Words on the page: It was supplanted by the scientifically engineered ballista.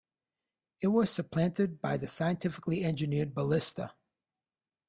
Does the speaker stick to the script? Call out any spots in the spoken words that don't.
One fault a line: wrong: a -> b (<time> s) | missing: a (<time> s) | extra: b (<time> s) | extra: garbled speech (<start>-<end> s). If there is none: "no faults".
no faults